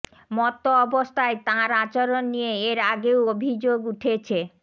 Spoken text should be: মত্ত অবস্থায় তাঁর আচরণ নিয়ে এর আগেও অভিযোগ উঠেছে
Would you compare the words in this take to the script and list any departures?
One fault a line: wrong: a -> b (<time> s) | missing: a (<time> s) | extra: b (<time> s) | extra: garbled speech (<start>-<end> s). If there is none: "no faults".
no faults